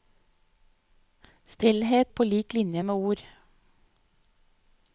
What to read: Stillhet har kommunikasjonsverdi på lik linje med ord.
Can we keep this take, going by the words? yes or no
no